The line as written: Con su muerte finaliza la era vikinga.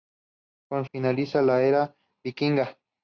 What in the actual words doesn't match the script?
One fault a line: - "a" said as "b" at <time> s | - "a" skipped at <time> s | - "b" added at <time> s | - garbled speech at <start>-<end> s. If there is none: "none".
- "su muerte" skipped at 0.8 s